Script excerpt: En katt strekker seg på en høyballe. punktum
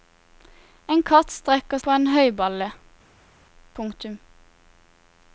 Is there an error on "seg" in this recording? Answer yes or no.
yes